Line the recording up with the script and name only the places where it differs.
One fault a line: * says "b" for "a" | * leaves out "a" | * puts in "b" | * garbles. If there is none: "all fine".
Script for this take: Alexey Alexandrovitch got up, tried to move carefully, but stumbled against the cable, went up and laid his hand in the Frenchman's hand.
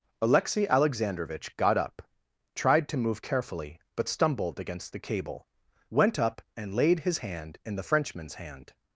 all fine